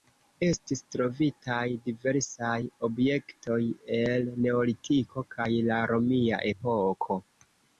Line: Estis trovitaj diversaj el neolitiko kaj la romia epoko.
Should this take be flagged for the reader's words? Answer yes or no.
yes